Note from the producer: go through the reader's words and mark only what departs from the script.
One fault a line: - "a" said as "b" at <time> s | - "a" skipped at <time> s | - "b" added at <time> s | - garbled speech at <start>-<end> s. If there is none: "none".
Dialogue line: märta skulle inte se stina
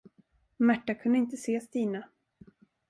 - "skulle" said as "kunde" at 0.9 s